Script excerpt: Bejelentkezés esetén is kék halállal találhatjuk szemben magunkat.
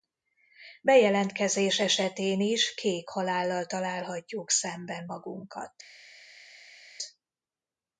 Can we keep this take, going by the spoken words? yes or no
yes